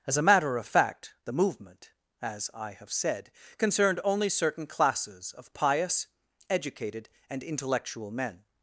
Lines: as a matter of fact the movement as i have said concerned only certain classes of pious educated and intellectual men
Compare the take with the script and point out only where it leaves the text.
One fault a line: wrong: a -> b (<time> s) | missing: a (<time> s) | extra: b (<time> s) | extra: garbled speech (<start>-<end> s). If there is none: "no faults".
no faults